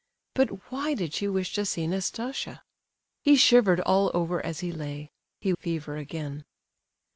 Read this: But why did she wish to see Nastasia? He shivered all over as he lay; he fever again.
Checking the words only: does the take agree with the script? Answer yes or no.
yes